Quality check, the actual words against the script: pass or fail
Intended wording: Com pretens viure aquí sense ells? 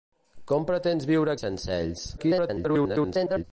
fail